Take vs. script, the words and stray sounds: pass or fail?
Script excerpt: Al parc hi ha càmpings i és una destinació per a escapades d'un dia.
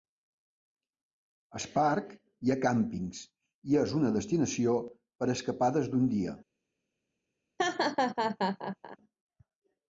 fail